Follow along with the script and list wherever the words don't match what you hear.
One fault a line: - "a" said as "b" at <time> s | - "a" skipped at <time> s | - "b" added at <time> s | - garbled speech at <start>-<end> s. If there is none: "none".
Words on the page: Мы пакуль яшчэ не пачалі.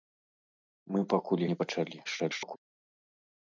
- "яшчэ" skipped at 1.4 s
- garbled speech at 2.0-2.6 s